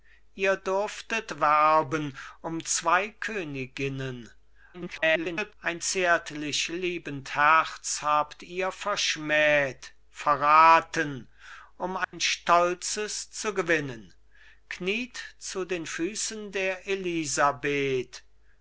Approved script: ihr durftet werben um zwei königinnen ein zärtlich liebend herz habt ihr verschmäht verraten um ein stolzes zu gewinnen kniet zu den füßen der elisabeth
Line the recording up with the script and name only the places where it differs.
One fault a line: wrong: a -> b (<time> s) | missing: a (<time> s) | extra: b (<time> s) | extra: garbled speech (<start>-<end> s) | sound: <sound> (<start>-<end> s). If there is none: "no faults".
extra: garbled speech (4.7-5.5 s)
sound: dropout (12.0-12.1 s)